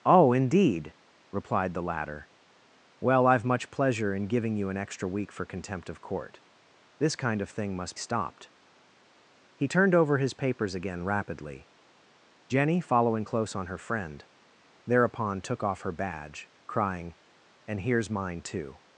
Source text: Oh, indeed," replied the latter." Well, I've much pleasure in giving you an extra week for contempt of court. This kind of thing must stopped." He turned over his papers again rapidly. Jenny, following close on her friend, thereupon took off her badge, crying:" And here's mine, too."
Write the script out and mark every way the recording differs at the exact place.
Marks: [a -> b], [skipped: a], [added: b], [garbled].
Oh, indeed," replied the latter." Well, I've much pleasure in giving you an extra week for contempt of court. This kind of thing must stopped." He turned over his papers again rapidly. Jenny, following close on her friend, thereupon took off her badge, crying:" And here's mine, too."